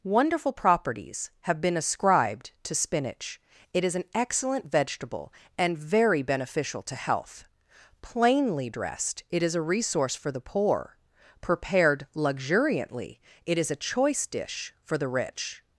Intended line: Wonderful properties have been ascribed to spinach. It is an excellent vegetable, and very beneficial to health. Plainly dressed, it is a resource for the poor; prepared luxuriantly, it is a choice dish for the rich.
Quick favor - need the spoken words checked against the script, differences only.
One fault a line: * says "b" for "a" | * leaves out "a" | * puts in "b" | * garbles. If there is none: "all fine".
all fine